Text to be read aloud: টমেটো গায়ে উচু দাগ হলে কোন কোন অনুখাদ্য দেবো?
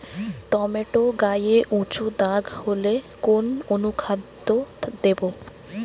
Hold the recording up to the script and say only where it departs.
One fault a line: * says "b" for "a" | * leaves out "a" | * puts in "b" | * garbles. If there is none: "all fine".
* leaves out "কোন"